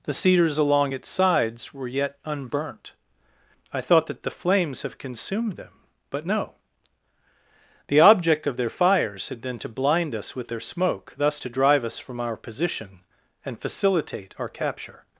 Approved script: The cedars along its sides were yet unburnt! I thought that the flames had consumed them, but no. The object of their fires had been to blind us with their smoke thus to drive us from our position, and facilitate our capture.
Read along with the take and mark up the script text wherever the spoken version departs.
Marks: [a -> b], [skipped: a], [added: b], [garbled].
The cedars along its sides were yet unburnt! I thought that the flames [had -> have] consumed them, but no. The object of their fires had been to blind us with their smoke thus to drive us from our position, and facilitate our capture.